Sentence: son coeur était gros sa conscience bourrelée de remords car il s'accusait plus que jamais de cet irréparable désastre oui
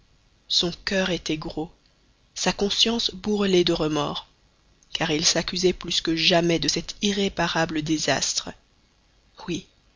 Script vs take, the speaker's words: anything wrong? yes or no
no